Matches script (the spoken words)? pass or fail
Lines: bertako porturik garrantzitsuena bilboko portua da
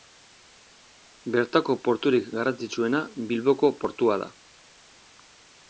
pass